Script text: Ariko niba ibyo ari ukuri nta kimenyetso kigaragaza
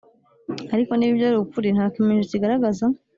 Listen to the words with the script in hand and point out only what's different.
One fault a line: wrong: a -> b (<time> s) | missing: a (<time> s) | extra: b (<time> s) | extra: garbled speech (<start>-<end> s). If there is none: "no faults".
no faults